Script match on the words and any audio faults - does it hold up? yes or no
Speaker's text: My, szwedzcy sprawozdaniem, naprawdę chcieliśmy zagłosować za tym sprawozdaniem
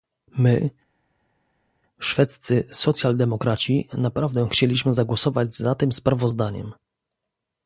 no